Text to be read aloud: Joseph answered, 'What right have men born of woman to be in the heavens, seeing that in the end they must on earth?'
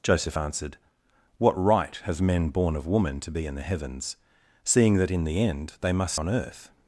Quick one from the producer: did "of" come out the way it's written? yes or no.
yes